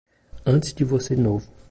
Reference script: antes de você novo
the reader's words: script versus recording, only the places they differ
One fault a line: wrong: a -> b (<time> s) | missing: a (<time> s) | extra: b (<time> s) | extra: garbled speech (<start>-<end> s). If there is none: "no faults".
no faults